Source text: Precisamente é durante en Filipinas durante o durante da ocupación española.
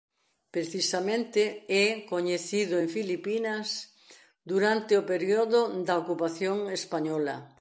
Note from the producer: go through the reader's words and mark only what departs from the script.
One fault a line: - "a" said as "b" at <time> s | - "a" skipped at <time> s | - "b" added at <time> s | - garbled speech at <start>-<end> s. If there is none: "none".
- "durante" said as "coñecido" at 2.1 s
- "durante" said as "período" at 5.1 s